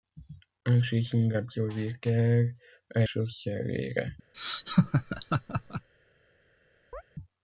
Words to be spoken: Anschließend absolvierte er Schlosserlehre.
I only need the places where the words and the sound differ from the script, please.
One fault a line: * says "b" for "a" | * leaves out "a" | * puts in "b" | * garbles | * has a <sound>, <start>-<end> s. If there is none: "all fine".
* has a laugh, 4.3-5.9 s
* has a chirp, 6.9-7.0 s